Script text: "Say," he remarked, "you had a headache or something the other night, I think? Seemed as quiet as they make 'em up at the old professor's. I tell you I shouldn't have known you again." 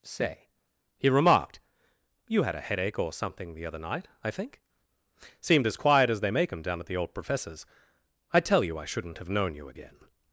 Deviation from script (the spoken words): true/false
true